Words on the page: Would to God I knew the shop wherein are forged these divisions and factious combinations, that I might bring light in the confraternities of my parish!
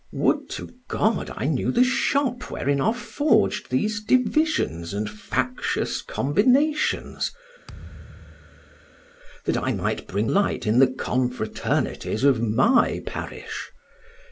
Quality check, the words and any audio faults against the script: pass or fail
fail